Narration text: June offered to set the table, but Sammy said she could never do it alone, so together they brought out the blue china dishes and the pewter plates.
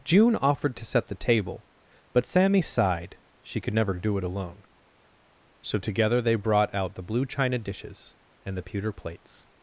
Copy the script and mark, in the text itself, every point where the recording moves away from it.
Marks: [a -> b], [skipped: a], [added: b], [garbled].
June offered to set the table, but Sammy [said -> sighed] she could never do it alone, so together they brought out the blue china dishes and the pewter plates.